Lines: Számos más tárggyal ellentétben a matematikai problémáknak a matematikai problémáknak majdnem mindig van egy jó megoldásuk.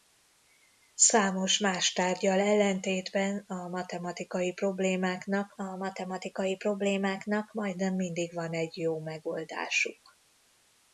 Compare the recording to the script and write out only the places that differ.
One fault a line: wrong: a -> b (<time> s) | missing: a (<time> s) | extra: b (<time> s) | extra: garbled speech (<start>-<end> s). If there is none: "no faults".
no faults